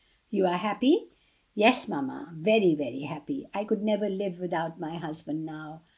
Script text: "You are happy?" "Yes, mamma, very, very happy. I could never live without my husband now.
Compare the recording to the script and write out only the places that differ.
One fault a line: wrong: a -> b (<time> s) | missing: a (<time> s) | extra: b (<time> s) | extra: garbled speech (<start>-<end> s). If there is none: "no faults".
no faults